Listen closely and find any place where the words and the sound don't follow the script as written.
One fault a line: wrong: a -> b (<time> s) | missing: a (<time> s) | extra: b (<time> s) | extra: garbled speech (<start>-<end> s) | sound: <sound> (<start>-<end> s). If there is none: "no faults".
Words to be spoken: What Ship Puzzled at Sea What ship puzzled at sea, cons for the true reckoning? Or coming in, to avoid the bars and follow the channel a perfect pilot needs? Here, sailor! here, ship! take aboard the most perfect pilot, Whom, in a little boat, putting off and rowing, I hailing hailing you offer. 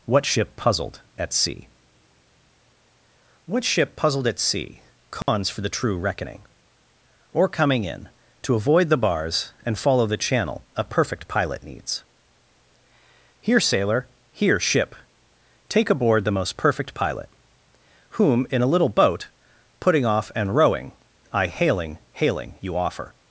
sound: dropout (5.2-5.3 s)